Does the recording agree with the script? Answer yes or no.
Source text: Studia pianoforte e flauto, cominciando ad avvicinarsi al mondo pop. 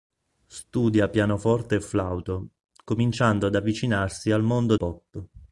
yes